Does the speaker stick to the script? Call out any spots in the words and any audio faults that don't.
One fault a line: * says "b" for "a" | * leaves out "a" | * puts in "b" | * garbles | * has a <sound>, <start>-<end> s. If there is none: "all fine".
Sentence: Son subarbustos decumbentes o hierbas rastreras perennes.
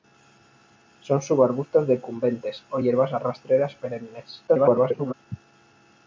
* garbles